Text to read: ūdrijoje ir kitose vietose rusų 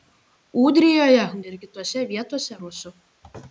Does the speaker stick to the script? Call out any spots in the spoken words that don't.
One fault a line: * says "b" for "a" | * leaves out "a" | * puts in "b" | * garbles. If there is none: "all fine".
all fine